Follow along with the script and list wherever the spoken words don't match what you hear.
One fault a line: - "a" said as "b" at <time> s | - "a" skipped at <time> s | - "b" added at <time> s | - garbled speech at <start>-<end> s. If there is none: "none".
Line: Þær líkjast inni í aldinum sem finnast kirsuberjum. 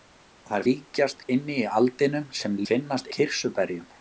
none